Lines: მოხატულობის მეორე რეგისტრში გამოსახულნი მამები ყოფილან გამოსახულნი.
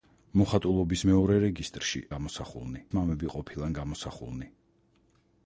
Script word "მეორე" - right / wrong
right